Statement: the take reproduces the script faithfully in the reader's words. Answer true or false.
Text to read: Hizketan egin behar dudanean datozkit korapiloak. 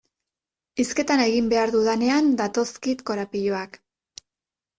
true